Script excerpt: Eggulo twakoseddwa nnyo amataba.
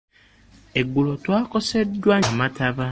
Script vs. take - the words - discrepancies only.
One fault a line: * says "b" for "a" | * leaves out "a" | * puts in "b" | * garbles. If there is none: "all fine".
* leaves out "nnyo"